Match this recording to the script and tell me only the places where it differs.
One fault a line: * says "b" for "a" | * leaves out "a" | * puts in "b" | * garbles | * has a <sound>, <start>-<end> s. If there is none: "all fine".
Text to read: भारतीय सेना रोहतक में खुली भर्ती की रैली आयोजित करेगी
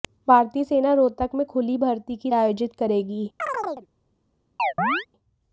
* leaves out "रैली"
* has a chirp, 3.4-3.9 s
* has a chirp, 4.6-5.1 s